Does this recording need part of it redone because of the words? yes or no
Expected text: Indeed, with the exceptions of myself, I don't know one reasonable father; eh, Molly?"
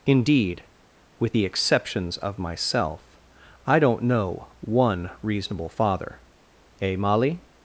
no